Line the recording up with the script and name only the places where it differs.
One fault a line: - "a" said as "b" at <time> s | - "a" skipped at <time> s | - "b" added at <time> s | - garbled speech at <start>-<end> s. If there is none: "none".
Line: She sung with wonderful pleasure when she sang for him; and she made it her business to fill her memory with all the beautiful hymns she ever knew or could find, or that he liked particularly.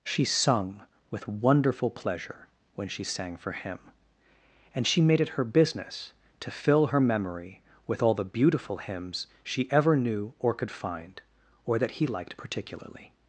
none